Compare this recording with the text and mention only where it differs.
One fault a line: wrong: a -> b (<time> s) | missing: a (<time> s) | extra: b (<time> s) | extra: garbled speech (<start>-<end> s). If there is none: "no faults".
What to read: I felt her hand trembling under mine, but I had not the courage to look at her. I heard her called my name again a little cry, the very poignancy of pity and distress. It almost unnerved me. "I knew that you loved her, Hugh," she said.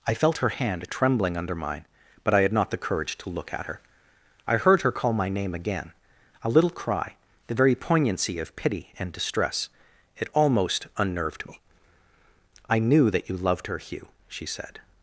wrong: called -> call (4.9 s)